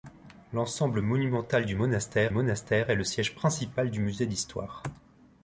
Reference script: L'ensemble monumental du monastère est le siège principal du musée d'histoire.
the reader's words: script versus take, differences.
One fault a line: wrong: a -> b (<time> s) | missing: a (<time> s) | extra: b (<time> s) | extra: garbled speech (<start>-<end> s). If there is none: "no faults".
extra: monastère (2.3 s)